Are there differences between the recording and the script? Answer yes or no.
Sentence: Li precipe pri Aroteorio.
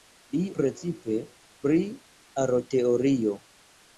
no